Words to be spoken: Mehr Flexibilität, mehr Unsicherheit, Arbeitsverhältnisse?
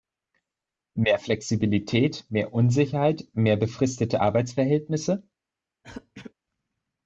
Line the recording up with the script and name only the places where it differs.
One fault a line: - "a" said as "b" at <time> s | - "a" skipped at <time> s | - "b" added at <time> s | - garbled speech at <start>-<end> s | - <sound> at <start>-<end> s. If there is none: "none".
- "mehr befristete" added at 3.3 s
- throat clearing at 5.8-6.3 s